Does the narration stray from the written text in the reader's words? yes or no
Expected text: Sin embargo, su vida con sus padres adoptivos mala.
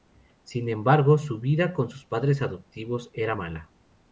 yes